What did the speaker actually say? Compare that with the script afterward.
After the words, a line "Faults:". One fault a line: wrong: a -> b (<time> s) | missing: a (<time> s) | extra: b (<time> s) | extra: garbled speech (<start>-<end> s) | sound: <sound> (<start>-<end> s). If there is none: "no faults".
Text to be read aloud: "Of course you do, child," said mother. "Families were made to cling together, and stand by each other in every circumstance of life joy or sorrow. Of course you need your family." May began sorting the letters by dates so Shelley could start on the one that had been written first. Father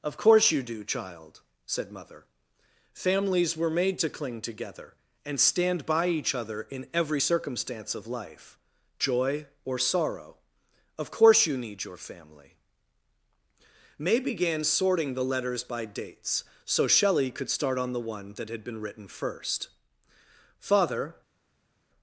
"Of course you do, child," said mother. "Families were made to cling together, and stand by each other in every circumstance of life joy or sorrow. Of course you need your family." May began sorting the letters by dates so Shelley could start on the one that had been written first. Father
Faults:
no faults